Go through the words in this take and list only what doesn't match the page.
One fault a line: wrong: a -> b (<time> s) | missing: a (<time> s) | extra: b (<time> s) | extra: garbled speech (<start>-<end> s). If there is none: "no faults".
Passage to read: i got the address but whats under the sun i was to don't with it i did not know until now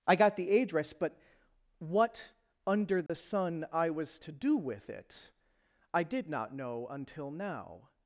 wrong: whats -> what (1.8 s)
wrong: don't -> do (4.3 s)